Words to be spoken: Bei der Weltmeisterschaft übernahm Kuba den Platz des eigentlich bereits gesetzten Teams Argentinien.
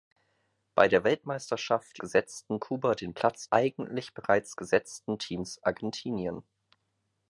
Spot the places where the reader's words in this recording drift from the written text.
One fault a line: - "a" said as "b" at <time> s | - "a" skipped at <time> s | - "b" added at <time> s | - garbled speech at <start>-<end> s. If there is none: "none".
- "übernahm" said as "gesetzten" at 2.0 s
- "des" skipped at 3.5 s